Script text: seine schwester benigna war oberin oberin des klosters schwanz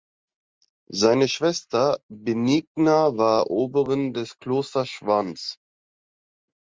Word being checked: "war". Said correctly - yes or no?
yes